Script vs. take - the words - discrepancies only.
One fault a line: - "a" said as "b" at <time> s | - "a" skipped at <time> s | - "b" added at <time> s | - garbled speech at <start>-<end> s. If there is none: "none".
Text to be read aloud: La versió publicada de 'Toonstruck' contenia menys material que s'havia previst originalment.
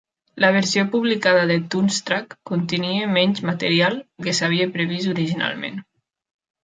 none